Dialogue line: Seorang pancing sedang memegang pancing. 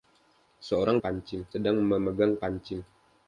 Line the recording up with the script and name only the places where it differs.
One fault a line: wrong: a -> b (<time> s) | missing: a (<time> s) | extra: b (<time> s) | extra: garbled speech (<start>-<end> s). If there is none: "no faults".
no faults